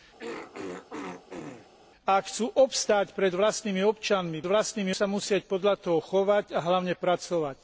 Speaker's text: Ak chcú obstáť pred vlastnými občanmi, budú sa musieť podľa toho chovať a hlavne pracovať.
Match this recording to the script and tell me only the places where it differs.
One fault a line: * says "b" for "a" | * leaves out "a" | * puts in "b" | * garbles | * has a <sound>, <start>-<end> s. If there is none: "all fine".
* has a throat clearing, 0.2-1.7 s
* says "vlastnými" for "budú"